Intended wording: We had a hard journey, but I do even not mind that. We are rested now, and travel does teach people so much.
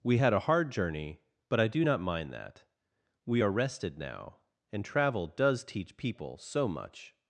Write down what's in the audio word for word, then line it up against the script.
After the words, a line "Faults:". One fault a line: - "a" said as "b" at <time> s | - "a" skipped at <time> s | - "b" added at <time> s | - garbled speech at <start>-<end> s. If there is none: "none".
We had a hard journey, but I do not mind that. We are rested now, and travel does teach people so much.
Faults:
- "even" skipped at 1.8 s